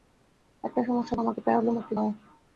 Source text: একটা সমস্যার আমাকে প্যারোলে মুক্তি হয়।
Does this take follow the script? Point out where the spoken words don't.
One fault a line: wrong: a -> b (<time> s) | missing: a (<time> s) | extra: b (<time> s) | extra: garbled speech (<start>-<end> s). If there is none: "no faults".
no faults